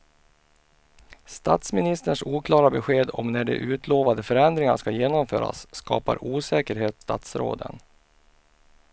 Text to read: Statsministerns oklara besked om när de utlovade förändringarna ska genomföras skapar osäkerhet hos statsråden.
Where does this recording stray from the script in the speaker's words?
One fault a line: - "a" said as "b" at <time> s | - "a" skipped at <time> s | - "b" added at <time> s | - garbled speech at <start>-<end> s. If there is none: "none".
- "hos" skipped at 7.0 s